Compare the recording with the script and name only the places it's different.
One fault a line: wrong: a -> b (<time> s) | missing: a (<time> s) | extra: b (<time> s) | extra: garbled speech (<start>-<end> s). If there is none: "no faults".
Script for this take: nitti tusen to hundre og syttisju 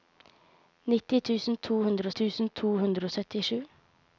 extra: tusen to hundre (2.2 s)